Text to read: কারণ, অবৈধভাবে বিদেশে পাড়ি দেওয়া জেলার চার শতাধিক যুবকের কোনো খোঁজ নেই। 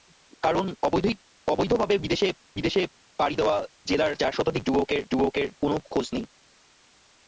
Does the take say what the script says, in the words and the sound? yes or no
no